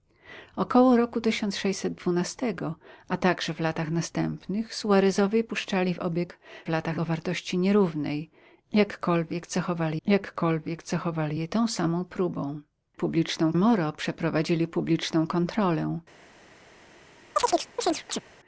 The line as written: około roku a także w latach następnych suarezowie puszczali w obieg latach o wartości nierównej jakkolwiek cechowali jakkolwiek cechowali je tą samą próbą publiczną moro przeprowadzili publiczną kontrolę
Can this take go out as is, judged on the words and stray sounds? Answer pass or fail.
fail